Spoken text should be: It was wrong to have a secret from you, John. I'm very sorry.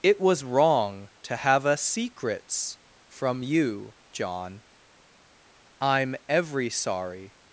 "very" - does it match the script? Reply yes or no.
no